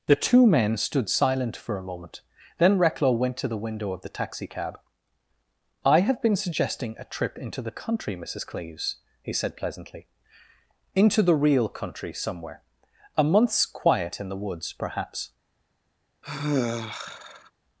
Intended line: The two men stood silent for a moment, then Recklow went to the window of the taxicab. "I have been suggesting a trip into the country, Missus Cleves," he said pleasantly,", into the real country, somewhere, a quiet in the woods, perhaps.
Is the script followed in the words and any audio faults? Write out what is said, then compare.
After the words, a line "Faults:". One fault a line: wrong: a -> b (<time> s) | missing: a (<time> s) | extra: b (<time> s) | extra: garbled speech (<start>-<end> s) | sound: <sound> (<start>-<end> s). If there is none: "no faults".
The two men stood silent for a moment, then Recklow went to the window of the taxicab. "I have been suggesting a trip into the country, Missus Cleves," he said pleasantly,", into the real country, somewhere, a month's quiet in the woods, perhaps.
Faults:
extra: month's (13.2 s)
sound: sigh (16.2-17.5 s)